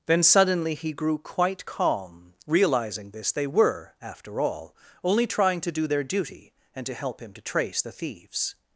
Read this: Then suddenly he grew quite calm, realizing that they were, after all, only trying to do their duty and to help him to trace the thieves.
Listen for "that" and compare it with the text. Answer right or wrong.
wrong